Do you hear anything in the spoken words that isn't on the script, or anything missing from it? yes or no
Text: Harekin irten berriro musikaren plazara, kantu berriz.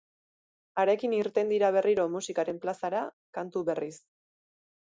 yes